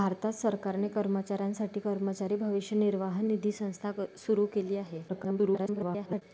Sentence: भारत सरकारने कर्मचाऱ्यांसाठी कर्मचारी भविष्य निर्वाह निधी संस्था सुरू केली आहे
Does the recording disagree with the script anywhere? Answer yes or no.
yes